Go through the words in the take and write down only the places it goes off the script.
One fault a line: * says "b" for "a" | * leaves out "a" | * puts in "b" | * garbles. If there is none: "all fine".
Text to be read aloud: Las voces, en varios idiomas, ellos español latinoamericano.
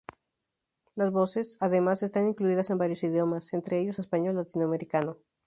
* puts in "además están incluidas"
* puts in "entre"